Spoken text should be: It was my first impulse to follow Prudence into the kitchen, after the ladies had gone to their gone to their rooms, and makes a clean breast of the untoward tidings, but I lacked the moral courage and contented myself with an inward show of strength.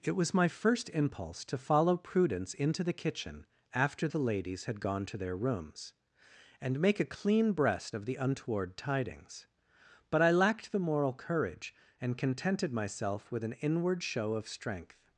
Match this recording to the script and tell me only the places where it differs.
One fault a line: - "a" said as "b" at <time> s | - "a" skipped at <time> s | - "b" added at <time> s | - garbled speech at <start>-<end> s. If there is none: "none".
- "gone to their" skipped at 5.4 s
- "makes" said as "make" at 6.8 s